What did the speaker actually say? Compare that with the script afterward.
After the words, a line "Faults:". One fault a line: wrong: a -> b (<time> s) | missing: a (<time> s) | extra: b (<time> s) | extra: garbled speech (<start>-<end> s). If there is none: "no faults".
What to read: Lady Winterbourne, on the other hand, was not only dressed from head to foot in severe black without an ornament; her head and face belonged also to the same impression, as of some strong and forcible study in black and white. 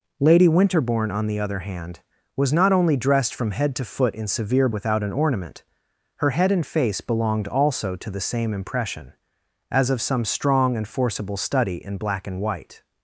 Lady Winterbourne, on the other hand, was not only dressed from head to foot in severe without an ornament; her head and face belonged also to the same impression, as of some strong and forcible study in black and white.
Faults:
missing: black (4.7 s)